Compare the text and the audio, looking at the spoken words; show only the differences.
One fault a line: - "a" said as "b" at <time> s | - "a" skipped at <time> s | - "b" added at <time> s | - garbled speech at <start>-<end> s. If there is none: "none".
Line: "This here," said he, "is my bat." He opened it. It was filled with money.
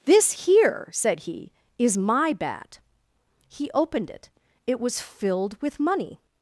none